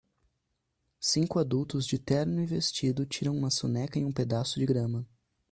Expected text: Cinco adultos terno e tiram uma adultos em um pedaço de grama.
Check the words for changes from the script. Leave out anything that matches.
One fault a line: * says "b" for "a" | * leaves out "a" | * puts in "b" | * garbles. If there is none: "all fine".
* puts in "de"
* puts in "vestido"
* says "soneca" for "adultos"